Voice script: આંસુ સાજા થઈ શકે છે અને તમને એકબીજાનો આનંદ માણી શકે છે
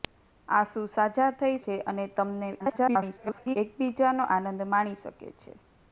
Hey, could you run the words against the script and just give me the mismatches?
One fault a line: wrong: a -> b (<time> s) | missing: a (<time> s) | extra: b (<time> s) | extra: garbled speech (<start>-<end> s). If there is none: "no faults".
missing: શકે (1.6 s)
extra: garbled speech (2.6-3.6 s)